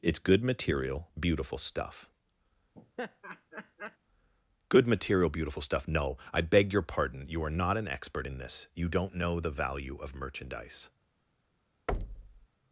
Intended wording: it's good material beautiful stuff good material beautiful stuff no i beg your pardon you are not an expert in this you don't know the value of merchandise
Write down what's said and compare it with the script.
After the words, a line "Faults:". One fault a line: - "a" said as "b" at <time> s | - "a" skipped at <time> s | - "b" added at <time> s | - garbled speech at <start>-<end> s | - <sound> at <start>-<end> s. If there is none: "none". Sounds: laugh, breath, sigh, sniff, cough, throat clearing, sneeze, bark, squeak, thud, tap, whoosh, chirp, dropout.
it's good material beautiful stuff good material beautiful stuff no i beg your pardon you are not an expert in this you don't know the value of merchandise
Faults:
- laugh at 2.7-4.0 s
- thud at 11.9-12.5 s